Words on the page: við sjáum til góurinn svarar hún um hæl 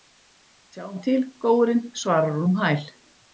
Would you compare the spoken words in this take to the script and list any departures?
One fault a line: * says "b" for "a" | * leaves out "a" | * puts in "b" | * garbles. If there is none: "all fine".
all fine